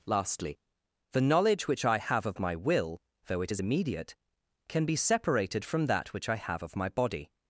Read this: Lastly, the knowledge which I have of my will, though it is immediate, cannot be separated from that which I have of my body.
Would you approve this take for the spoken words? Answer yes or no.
no